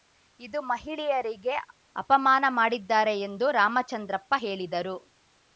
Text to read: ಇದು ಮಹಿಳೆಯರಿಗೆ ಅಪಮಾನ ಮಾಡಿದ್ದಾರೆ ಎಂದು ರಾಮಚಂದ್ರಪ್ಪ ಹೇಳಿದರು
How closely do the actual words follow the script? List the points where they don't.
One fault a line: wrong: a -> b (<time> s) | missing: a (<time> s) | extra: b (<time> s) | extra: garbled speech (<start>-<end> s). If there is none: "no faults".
no faults